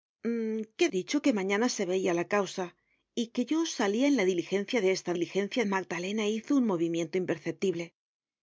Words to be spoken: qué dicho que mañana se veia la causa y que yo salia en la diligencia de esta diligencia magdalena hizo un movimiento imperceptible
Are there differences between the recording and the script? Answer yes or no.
no